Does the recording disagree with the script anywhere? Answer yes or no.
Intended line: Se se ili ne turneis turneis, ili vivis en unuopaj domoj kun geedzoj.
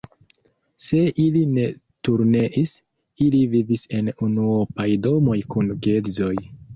yes